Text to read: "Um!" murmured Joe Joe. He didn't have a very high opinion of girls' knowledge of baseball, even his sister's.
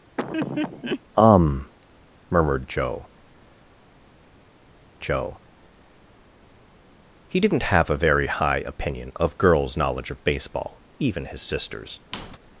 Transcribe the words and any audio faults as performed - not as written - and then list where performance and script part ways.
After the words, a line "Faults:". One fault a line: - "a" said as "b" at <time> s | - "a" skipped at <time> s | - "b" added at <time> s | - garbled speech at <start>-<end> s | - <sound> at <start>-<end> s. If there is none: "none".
"Um!" murmured Joe Joe. He didn't have a very high opinion of girls' knowledge of baseball, even his sister's.
Faults:
- laugh at 0.2-1.0 s
- squeak at 12.1-12.4 s